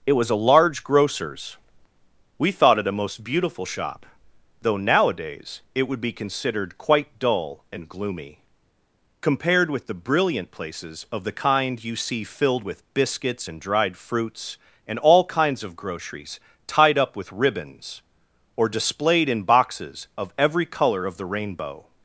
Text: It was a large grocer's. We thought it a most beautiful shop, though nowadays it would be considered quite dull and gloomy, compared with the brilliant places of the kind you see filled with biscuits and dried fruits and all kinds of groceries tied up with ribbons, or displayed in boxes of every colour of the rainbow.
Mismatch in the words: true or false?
false